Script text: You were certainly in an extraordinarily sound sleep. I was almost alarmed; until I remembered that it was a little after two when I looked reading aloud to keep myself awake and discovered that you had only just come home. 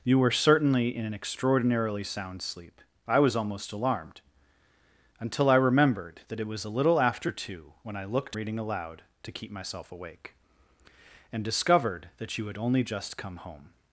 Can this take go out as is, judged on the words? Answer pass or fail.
pass